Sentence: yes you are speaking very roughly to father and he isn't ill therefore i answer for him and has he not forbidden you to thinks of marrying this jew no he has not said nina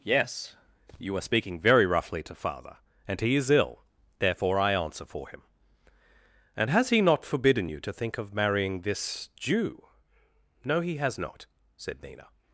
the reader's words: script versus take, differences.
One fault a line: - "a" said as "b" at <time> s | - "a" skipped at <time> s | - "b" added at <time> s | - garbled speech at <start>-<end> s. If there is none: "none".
- "isn't" said as "is" at 3.4 s
- "thinks" said as "think" at 7.9 s